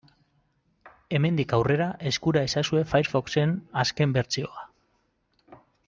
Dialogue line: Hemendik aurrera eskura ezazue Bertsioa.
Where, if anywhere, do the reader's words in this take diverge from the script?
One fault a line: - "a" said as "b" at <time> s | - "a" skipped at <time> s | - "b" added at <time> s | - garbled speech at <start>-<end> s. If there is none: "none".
- "Firefoxen azken" added at 2.9 s